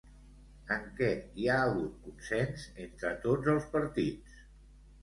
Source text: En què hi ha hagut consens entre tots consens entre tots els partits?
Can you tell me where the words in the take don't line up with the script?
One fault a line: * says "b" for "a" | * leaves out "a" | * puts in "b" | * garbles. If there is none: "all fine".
* leaves out "consens entre tots"